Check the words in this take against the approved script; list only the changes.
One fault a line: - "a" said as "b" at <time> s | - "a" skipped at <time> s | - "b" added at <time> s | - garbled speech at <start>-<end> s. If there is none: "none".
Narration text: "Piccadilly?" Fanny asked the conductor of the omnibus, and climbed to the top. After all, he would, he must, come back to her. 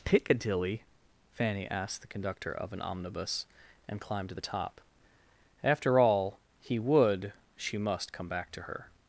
- "the" said as "an" at 2.7 s
- "he" said as "she" at 7.6 s